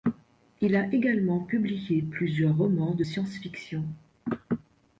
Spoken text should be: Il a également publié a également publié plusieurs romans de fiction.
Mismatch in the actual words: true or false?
true